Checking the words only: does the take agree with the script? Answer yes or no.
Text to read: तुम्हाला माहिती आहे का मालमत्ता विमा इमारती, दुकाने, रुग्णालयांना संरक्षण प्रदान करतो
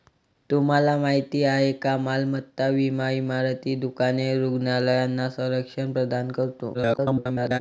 no